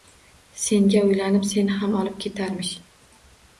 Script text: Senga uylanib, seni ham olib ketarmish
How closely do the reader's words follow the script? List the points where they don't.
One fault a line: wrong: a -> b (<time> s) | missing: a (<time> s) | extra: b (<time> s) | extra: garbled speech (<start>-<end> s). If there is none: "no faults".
no faults